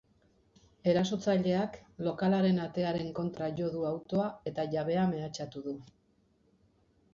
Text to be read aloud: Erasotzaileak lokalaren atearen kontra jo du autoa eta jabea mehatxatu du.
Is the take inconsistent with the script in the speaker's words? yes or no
no